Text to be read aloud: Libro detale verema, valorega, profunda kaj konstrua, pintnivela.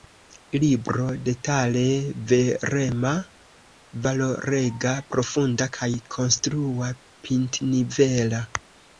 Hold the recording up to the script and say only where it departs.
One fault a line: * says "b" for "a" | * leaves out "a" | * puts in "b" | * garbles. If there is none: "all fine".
all fine